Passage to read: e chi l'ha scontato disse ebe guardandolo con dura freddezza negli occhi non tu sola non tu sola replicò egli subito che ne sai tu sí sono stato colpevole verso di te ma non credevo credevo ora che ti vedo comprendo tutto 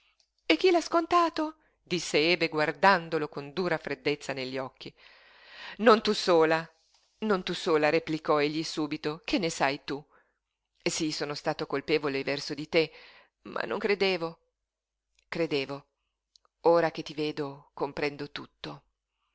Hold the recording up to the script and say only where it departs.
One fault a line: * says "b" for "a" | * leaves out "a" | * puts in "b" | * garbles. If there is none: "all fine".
all fine